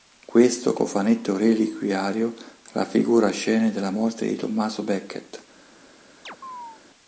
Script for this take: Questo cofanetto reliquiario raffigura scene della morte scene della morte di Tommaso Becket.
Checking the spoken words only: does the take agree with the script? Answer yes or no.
no